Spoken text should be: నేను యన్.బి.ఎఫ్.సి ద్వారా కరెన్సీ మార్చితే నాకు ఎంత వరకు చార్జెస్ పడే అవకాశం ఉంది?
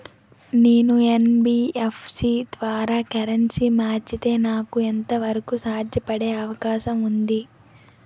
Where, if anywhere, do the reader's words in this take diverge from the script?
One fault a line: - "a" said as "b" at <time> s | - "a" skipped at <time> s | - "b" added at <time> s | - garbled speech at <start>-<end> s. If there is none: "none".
none